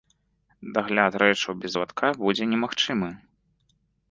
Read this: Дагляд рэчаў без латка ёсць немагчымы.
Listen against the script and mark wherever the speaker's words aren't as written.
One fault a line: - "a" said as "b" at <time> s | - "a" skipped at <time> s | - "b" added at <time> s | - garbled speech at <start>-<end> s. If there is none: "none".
- "ёсць" said as "будзе" at 2.2 s